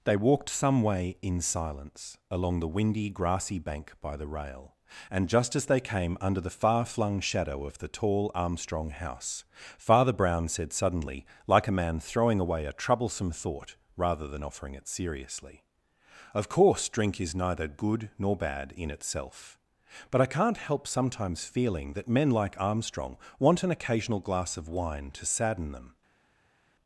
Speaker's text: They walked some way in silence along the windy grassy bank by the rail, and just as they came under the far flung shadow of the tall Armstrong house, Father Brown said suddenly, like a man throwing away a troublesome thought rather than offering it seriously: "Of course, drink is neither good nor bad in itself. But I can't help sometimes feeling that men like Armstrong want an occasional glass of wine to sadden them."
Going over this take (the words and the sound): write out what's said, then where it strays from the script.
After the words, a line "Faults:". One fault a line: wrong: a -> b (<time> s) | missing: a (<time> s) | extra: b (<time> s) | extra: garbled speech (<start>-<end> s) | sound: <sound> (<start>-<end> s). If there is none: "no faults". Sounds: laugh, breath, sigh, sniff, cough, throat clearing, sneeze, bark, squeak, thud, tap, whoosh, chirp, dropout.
They walked some way in silence along the windy grassy bank by the rail, and just as they came under the far flung shadow of the tall Armstrong house, Father Brown said suddenly, like a man throwing away a troublesome thought rather than offering it seriously: "Of course, drink is neither good nor bad in itself. But I can't help sometimes feeling that men like Armstrong want an occasional glass of wine to sadden them."
Faults:
no faults